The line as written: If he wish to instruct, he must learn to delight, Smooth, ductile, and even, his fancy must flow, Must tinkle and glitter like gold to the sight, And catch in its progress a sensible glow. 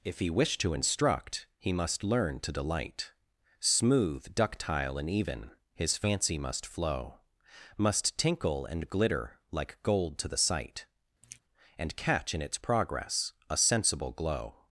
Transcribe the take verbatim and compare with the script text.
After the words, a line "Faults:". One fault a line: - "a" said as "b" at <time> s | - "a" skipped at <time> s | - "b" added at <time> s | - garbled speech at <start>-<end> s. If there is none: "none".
If he wish to instruct, he must learn to delight, Smooth, ductile, and even, his fancy must flow, Must tinkle and glitter like gold to the sight, And catch in its progress a sensible glow.
Faults:
none